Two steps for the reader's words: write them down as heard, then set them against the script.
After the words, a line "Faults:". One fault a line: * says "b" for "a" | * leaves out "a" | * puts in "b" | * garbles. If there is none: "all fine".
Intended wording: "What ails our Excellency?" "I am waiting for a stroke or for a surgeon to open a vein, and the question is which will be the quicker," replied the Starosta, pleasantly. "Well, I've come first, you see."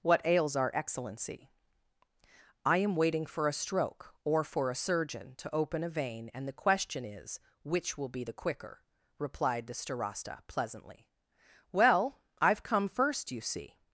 "What ails our Excellency?" "I am waiting for a stroke or for a surgeon to open a vein, and the question is which will be the quicker," replied the Starosta, pleasantly. "Well, I've come first, you see."
Faults:
all fine